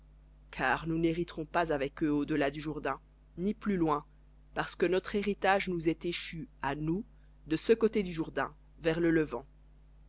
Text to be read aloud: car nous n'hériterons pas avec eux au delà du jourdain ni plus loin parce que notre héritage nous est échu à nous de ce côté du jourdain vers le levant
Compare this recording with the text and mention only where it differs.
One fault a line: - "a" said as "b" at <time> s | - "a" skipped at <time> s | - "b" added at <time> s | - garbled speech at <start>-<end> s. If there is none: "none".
none